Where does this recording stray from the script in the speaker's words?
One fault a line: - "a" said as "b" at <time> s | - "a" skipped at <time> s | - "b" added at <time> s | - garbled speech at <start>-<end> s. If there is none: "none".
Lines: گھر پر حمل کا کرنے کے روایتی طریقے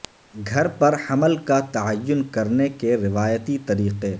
- "تعین" added at 1.7 s